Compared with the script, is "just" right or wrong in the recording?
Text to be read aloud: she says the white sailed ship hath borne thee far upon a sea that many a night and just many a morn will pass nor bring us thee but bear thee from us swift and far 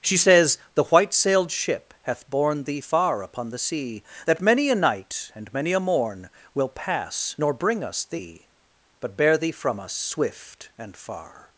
wrong